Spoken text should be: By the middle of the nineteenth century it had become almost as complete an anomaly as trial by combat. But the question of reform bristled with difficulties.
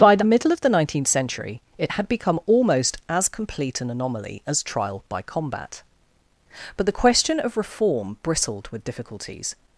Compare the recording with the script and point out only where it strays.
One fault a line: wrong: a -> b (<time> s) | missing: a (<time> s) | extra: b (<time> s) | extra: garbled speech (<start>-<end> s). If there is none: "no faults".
no faults